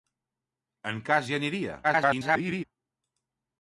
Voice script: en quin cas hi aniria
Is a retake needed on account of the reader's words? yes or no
yes